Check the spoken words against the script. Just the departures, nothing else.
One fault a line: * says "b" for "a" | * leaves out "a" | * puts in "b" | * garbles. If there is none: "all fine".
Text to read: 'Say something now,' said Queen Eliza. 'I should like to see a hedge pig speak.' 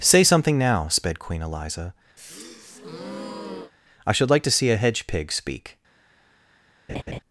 * says "sped" for "said"